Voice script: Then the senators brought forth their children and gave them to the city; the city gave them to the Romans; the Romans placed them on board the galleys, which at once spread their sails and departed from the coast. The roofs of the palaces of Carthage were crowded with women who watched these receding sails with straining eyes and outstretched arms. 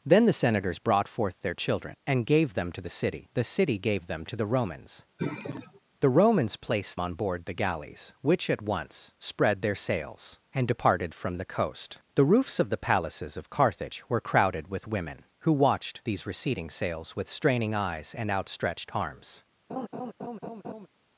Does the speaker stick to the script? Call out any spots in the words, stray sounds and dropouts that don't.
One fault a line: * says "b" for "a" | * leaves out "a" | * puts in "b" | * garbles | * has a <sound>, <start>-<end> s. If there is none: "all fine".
* has a sigh, 5.2-5.8 s
* leaves out "them"
* has a laugh, 19.7-20.9 s